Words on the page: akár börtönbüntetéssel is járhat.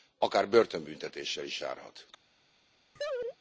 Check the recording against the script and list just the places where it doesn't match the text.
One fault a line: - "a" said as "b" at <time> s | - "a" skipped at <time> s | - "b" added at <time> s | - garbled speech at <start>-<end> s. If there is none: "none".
none